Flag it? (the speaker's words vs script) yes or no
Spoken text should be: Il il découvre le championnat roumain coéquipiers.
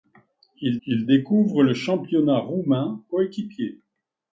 no